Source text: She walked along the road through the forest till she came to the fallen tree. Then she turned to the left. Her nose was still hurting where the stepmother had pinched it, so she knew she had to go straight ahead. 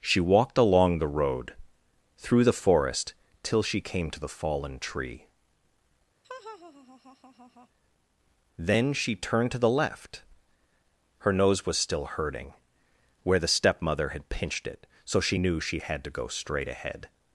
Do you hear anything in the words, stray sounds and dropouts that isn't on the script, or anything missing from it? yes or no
yes